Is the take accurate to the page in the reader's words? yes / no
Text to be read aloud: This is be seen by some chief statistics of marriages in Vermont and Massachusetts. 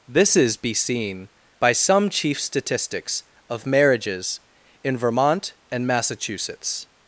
yes